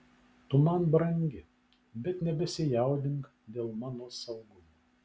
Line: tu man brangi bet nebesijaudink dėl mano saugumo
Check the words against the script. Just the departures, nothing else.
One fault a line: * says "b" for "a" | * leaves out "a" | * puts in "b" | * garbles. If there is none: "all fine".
all fine